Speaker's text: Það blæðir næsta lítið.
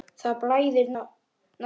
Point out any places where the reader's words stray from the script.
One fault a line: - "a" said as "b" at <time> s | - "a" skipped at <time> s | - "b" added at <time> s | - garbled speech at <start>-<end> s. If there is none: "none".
- "næsta" skipped at 0.9 s